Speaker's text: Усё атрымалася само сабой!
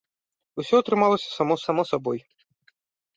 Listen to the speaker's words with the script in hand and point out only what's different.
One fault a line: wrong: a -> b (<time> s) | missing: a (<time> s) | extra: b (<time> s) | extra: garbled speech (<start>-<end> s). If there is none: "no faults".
extra: само (1.7 s)